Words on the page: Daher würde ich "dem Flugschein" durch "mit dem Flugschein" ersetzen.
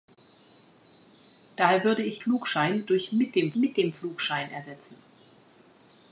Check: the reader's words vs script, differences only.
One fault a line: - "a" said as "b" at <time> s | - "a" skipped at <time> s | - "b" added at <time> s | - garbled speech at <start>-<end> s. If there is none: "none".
- "dem" skipped at 2.2 s
- "mit dem" added at 3.6 s